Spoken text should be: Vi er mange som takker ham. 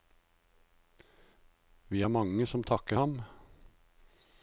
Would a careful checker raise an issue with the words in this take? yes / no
no